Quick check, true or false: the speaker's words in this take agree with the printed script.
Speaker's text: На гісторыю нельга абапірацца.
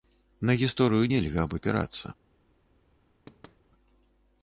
true